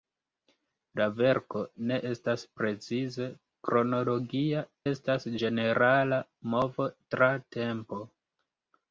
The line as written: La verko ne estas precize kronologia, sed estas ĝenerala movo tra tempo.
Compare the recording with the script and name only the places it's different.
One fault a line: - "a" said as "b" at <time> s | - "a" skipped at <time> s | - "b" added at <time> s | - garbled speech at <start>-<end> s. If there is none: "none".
- "sed" skipped at 4.7 s